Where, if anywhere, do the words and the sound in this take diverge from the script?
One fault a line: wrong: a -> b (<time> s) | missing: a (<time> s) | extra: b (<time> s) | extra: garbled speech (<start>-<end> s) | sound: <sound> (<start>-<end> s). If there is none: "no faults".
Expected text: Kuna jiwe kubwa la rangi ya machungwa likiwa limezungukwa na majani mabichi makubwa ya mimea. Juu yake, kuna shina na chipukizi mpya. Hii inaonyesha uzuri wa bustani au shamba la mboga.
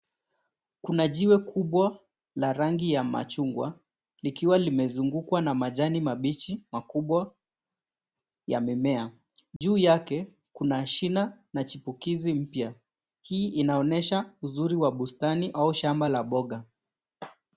sound: dropout (9.6-9.6 s)